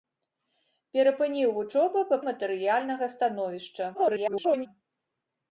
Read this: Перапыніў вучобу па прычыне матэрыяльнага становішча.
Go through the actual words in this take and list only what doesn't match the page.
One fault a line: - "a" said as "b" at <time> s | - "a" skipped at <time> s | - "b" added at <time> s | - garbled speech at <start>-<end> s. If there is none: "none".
- "прычыне" skipped at 2.2 s
- garbled speech at 3.9-4.7 s